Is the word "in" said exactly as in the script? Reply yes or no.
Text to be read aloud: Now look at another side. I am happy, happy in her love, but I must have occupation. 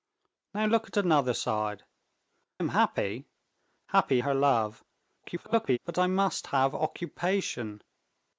no